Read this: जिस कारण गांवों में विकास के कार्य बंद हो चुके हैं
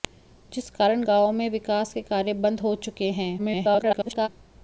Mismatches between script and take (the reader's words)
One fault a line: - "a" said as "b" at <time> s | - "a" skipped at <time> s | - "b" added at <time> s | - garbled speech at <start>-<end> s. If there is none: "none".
- garbled speech at 3.4-4.3 s